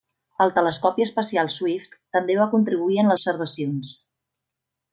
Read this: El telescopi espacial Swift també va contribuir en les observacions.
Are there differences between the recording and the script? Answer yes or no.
yes